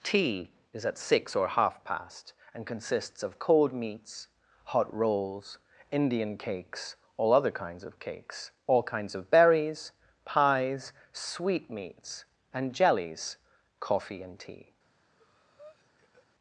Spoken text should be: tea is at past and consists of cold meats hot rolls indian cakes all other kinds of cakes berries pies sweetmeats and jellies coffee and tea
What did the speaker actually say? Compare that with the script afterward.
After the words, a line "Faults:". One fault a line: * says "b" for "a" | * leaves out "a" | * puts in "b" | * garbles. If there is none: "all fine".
tea is at six or half past and consists of cold meats hot rolls indian cakes all other kinds of cakes all kinds of berries pies sweetmeats and jellies coffee and tea
Faults:
* puts in "six or half"
* puts in "all kinds of"